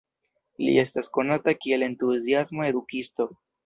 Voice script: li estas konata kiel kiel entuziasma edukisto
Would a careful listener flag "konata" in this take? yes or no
no